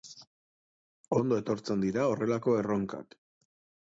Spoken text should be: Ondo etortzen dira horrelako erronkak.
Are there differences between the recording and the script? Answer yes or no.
no